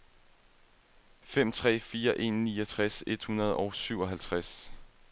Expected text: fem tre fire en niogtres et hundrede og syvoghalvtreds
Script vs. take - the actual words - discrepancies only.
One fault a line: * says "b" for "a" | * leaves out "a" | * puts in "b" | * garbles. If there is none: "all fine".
all fine